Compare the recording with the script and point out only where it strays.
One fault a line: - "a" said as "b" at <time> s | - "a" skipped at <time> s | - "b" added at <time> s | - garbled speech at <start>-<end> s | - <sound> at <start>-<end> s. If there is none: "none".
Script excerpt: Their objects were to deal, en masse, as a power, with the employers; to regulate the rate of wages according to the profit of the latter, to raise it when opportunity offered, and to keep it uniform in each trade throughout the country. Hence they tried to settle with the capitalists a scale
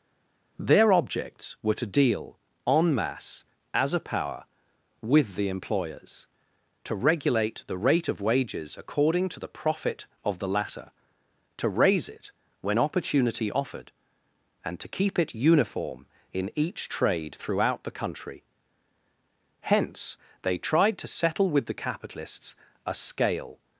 none